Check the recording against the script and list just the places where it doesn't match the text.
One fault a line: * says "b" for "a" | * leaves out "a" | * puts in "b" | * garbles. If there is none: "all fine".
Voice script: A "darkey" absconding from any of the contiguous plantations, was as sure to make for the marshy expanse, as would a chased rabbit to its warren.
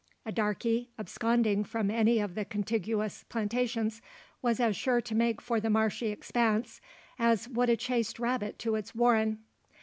all fine